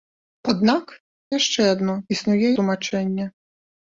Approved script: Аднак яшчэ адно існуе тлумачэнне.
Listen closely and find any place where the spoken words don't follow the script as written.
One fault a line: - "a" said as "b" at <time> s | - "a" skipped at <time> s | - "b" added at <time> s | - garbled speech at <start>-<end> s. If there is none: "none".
none